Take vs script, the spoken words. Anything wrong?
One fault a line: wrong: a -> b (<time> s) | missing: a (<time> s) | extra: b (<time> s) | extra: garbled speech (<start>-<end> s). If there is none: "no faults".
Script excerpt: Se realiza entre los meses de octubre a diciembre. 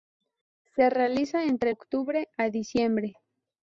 missing: los meses de (1.7 s)